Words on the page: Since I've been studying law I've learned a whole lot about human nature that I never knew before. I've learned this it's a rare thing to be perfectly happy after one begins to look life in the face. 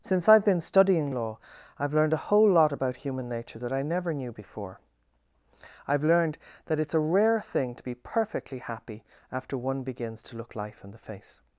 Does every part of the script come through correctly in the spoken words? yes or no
no